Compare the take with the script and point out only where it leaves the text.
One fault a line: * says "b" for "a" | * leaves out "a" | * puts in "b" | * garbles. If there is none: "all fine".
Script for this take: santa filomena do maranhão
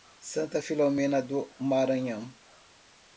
all fine